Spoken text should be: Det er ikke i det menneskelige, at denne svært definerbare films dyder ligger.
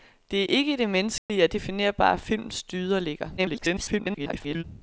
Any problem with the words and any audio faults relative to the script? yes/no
yes